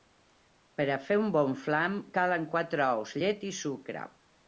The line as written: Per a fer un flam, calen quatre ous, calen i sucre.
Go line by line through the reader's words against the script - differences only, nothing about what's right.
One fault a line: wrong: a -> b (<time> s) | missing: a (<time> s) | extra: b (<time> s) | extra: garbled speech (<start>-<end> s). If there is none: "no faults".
extra: bon (1.4 s)
wrong: calen -> llet (3.2 s)